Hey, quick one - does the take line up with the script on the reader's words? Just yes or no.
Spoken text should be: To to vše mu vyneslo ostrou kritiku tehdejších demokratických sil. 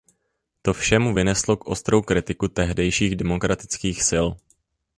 no